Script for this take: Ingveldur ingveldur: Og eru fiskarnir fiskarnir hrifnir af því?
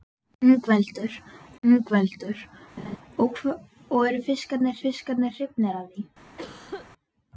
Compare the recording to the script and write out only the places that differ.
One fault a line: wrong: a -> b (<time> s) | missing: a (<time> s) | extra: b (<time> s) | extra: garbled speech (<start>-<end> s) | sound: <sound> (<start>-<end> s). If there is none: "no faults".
sound: laugh (2.8-3.0 s)
sound: cough (6.4-6.9 s)